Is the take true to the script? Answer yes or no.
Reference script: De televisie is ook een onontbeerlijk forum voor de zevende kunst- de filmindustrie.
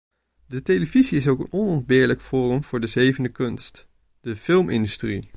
yes